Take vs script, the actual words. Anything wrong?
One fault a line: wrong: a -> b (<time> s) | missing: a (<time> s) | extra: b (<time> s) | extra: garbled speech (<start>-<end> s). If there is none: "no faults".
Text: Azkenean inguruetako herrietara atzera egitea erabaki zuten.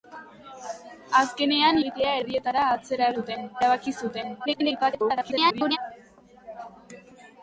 wrong: inguruetako -> egitea (1.8 s)
wrong: egitea -> zuten (3.2 s)
extra: garbled speech (4.5-5.8 s)